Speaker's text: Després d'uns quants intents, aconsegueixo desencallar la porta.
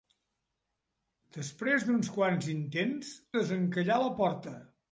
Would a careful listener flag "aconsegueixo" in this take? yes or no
yes